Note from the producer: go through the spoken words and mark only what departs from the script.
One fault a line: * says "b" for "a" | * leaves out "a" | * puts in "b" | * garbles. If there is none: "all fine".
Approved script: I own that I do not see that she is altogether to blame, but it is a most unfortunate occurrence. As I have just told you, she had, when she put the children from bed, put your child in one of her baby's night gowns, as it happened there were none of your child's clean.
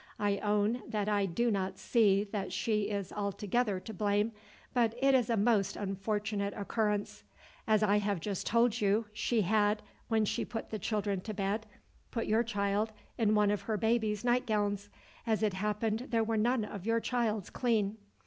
* says "to" for "from"